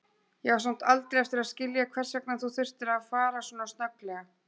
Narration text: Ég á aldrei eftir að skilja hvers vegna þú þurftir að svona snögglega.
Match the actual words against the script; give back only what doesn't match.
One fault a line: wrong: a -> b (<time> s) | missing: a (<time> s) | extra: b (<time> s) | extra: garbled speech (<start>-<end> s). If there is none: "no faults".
extra: samt (0.6 s)
extra: fara (3.1 s)